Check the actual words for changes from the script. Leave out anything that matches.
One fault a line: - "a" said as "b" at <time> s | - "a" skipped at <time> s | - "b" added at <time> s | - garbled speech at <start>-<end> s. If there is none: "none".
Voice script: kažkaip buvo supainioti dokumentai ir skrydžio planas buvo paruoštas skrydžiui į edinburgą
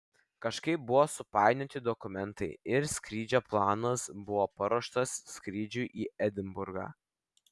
none